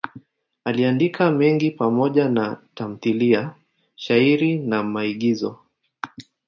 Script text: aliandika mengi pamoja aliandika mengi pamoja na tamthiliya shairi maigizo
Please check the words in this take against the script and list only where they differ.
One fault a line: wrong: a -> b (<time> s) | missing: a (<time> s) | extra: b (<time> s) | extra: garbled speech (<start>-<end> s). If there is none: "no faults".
missing: aliandika mengi pamoja (2.3 s)
extra: na (4.6 s)